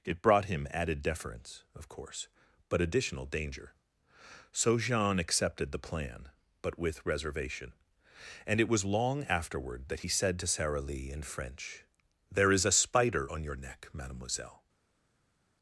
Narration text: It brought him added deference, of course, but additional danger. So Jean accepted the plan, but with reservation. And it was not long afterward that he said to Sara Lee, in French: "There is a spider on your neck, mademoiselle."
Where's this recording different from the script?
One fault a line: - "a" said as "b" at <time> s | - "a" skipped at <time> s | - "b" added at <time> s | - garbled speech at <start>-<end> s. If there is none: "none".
- "not" skipped at 8.8 s